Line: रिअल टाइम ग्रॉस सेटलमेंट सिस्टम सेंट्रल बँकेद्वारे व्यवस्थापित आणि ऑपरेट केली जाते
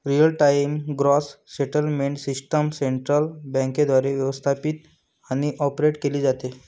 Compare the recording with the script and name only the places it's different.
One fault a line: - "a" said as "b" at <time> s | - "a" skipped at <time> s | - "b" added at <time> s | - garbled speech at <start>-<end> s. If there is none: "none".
none